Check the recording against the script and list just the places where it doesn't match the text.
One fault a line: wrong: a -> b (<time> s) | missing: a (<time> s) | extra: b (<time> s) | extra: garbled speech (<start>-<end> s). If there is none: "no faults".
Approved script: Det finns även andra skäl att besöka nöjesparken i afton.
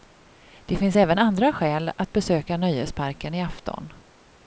no faults